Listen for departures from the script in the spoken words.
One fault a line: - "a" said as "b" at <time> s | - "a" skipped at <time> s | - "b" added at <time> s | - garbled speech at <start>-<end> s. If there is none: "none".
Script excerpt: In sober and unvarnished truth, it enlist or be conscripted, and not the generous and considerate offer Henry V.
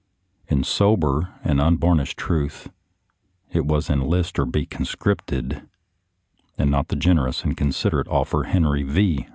- "was" added at 3.6 s